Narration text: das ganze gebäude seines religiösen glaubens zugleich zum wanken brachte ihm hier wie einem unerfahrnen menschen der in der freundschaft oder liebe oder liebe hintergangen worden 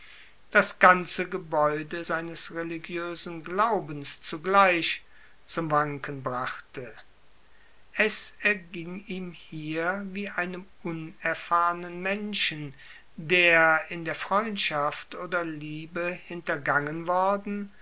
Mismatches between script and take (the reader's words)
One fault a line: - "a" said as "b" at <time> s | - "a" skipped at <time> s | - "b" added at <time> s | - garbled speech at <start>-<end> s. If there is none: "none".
- "es erging" added at 7.9 s
- "oder liebe" skipped at 16.0 s